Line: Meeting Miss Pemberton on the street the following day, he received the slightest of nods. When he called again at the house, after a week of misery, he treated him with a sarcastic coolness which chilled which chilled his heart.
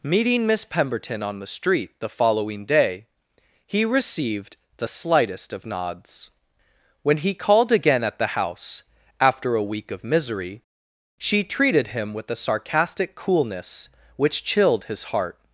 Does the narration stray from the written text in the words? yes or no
yes